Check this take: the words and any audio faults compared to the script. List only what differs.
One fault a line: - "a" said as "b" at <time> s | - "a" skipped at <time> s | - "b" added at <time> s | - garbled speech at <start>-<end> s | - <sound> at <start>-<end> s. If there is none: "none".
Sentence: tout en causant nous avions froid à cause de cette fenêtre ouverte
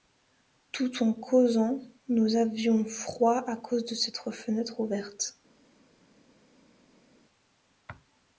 none